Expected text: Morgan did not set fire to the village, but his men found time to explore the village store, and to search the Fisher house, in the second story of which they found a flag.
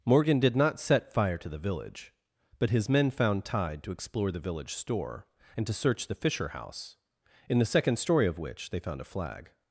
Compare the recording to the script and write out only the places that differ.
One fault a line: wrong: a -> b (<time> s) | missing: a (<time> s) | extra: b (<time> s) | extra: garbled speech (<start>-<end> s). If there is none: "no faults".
wrong: time -> tide (3.4 s)